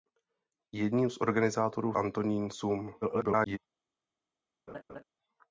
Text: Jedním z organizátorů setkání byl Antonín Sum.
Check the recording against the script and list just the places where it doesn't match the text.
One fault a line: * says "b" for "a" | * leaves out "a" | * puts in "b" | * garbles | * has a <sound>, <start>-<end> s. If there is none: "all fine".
* leaves out "setkání byl"
* garbles
* has a laugh, 4.7-5.0 s